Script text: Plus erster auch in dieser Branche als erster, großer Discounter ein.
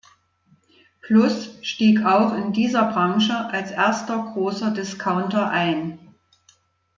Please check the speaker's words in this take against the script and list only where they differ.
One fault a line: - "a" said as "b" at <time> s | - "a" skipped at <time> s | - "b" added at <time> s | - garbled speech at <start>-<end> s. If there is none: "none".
- "erster" said as "stieg" at 1.6 s